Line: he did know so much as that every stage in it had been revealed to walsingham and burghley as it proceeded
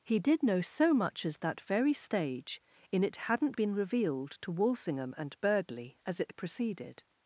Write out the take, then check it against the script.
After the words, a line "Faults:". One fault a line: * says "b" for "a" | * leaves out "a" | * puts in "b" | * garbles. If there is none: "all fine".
he did know so much as that very stage in it hadn't been revealed to walsingham and burghley as it proceeded
Faults:
* says "very" for "every"
* says "hadn't" for "had"